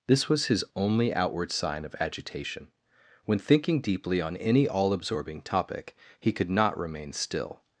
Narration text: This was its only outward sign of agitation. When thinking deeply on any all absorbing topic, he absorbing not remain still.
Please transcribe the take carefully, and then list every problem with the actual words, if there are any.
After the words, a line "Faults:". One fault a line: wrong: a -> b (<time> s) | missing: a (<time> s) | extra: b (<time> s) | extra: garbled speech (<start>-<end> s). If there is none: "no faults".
This was his only outward sign of agitation. When thinking deeply on any all absorbing topic, he could not remain still.
Faults:
wrong: its -> his (0.5 s)
wrong: absorbing -> could (6.3 s)